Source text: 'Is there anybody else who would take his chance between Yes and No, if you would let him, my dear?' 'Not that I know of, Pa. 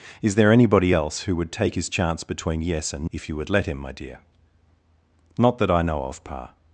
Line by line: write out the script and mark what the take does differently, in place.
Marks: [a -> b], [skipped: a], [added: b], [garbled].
'Is there anybody else who would take his chance between Yes and [skipped: No,] if you would let him, my dear?' 'Not that I know of, Pa.